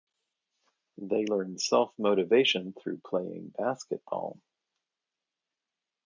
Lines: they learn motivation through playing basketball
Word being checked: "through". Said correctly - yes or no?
yes